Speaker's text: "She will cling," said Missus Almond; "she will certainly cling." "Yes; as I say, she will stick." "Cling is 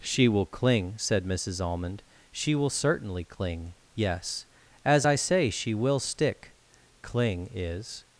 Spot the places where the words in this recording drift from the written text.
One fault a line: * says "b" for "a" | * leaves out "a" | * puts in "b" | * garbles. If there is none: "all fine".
all fine